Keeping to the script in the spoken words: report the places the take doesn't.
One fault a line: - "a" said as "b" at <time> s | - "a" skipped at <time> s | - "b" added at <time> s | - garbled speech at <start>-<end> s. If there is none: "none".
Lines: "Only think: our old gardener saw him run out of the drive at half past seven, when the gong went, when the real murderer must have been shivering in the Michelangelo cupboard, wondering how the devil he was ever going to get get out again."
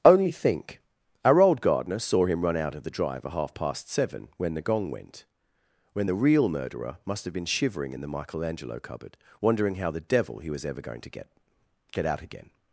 none